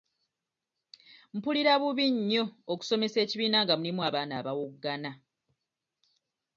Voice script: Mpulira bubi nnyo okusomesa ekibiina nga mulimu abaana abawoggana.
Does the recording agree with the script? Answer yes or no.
yes